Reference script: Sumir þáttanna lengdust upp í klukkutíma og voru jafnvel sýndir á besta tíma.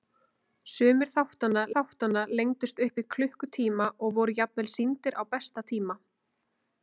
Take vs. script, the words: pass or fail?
fail